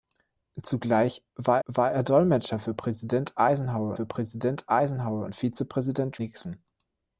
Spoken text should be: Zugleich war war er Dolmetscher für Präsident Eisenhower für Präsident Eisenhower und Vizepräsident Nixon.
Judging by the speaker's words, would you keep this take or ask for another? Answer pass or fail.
pass